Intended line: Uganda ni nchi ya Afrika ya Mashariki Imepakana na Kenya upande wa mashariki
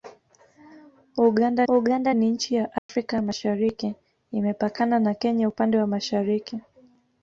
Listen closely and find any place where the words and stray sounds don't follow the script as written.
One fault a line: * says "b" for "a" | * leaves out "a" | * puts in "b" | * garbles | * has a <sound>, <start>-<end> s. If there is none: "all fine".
* puts in "uganda"
* has a dropout, 2.8-2.9 s